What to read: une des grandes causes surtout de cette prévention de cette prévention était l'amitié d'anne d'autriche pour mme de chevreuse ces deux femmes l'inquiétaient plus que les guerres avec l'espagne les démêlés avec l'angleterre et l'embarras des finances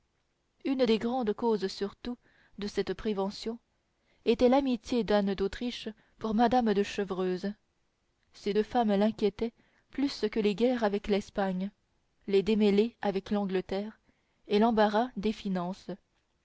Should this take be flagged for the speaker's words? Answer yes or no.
yes